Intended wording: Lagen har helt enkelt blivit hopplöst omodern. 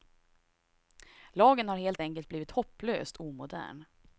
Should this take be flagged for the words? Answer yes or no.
no